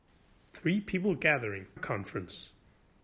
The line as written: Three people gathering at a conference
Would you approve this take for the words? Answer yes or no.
no